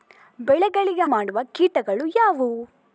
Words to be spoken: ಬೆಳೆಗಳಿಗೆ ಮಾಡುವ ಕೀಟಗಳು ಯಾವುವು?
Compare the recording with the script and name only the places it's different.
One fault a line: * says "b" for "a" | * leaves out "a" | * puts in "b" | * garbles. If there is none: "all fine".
all fine